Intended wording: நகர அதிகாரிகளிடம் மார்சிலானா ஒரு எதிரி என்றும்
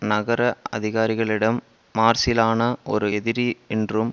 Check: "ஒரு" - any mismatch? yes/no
no